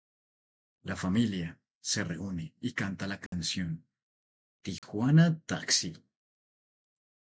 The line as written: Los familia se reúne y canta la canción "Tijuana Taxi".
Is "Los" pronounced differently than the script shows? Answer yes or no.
yes